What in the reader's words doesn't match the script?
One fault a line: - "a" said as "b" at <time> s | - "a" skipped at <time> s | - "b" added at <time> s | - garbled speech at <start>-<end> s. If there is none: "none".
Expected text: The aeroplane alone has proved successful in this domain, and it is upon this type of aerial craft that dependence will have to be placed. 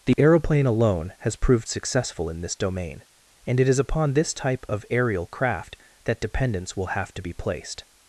none